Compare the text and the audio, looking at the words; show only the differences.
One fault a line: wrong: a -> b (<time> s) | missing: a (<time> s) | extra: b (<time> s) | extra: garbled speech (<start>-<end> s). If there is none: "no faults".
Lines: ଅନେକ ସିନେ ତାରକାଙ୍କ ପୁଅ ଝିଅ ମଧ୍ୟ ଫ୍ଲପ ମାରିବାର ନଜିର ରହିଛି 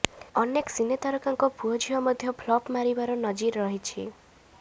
no faults